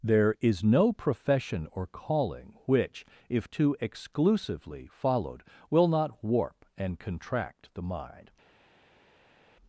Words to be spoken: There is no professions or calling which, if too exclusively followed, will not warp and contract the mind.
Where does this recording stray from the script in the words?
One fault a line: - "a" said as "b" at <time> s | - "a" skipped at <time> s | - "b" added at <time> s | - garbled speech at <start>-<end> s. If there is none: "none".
- "professions" said as "profession" at 0.9 s